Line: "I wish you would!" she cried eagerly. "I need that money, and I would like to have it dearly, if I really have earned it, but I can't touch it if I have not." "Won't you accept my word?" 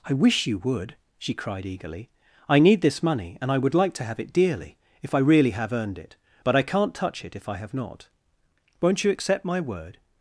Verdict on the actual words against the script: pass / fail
fail